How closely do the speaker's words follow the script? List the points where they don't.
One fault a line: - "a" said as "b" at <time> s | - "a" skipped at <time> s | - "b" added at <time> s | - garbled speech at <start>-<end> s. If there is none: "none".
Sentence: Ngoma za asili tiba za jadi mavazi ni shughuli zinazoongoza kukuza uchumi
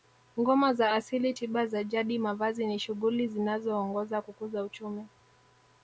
none